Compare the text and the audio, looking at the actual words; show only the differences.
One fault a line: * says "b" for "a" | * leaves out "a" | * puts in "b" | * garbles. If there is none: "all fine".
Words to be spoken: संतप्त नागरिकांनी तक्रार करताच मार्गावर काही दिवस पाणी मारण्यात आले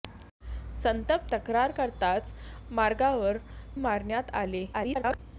* leaves out "नागरिकांनी"
* leaves out "काही दिवस पाणी"
* garbles